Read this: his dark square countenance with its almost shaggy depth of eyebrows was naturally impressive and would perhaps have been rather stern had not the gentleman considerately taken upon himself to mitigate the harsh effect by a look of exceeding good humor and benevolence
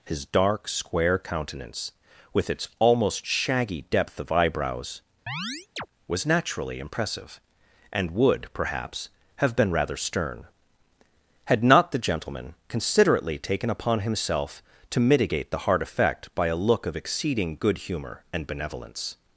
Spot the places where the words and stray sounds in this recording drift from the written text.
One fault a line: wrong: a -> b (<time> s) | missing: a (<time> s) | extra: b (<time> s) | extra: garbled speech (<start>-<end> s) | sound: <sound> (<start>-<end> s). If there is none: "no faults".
sound: chirp (5.3-5.9 s)
wrong: harsh -> hard (15.6 s)